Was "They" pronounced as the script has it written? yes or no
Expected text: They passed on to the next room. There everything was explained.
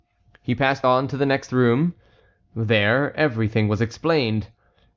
no